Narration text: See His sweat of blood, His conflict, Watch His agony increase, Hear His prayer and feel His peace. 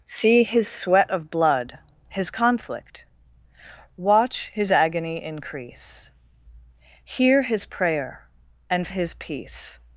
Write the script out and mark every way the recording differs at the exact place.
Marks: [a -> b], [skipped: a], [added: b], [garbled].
See His sweat of blood, His conflict, Watch His agony increase, Hear His prayer and [skipped: feel] His peace.